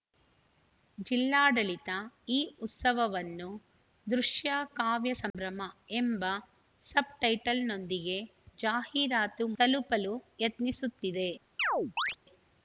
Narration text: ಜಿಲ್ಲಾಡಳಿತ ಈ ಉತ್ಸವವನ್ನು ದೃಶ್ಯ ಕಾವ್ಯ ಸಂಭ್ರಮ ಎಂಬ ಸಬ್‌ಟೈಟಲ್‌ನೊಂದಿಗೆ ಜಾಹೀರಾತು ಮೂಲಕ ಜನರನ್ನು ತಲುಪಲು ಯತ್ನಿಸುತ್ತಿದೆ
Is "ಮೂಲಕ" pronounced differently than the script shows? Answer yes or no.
yes